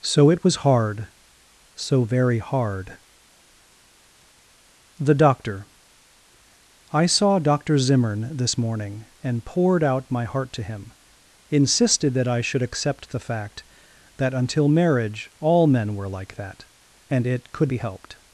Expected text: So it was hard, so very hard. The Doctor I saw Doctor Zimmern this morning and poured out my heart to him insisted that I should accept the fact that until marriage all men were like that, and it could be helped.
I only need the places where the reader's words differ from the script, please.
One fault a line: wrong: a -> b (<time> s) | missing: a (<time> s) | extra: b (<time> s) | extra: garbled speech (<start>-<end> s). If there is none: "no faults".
no faults